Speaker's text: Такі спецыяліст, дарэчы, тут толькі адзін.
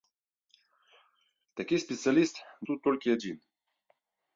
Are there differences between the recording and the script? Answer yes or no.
yes